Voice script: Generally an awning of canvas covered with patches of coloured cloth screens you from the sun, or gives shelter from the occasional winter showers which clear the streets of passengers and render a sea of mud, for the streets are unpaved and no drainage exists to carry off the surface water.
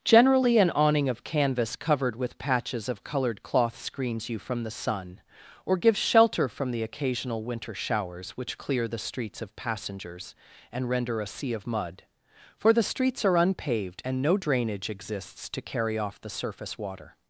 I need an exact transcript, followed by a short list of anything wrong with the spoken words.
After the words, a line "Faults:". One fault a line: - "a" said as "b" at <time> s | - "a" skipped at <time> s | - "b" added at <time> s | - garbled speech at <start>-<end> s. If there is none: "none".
Generally an awning of canvas covered with patches of coloured cloth screens you from the sun, or gives shelter from the occasional winter showers which clear the streets of passengers and render a sea of mud, for the streets are unpaved and no drainage exists to carry off the surface water.
Faults:
none